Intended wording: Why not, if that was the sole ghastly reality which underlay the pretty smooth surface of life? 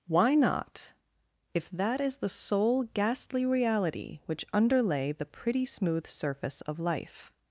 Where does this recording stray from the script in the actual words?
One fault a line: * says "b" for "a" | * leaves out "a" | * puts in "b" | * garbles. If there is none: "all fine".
* says "is" for "was"